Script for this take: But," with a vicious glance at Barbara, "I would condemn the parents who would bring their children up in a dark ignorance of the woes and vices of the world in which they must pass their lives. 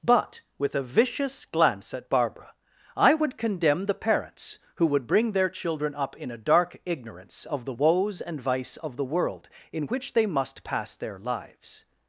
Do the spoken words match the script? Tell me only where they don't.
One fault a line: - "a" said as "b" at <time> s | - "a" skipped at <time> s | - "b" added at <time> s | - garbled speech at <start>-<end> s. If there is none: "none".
- "vices" said as "vice" at 8.4 s